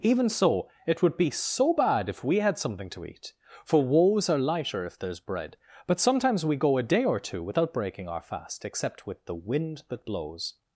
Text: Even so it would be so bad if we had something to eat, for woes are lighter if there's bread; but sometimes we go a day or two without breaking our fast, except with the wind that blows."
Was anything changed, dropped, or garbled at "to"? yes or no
no